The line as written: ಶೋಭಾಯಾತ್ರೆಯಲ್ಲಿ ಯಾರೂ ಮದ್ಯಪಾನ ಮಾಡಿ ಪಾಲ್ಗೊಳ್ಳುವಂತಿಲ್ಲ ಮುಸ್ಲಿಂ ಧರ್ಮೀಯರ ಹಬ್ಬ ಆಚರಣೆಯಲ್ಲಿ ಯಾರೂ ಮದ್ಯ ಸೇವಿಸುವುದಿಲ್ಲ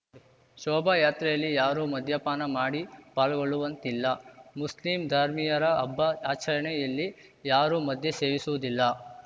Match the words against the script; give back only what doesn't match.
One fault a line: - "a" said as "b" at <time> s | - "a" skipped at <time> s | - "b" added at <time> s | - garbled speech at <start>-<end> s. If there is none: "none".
none